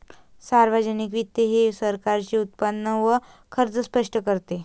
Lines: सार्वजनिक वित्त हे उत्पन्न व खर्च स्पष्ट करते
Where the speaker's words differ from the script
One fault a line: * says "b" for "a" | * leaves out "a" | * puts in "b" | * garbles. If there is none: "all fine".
* puts in "सरकारचे"